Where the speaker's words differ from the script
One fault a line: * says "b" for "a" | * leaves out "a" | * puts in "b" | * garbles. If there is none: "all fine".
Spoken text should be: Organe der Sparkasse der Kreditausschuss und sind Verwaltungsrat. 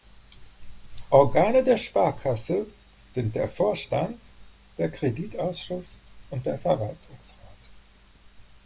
* puts in "sind"
* puts in "Vorstand der"
* says "der" for "sind"